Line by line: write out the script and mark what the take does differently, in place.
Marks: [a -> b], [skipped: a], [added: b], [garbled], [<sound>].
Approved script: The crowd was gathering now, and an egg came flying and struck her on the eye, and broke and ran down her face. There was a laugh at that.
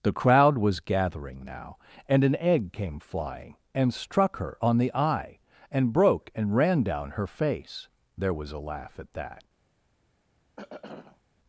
The crowd was gathering now, and an egg came flying and struck her on the eye, and broke and ran down her face. There was a laugh at that. [throat clearing]